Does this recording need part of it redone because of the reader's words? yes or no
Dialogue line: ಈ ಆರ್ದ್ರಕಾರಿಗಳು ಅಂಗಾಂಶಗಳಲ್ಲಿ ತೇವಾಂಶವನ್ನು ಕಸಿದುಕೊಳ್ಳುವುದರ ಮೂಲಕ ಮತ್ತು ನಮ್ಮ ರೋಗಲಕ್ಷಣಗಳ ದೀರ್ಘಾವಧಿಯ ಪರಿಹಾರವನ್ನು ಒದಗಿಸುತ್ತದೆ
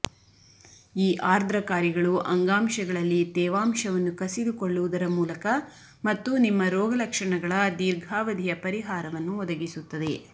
yes